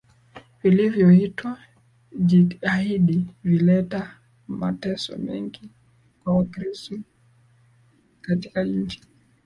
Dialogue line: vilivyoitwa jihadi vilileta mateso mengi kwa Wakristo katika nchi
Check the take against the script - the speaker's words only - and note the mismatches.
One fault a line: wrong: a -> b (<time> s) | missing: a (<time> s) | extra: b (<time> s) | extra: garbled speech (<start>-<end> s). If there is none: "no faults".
no faults